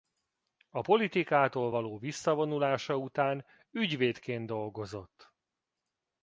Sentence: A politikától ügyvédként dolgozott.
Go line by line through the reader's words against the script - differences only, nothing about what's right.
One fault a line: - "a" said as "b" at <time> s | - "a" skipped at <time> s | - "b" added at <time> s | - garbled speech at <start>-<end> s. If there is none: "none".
- "való visszavonulása után" added at 1.7 s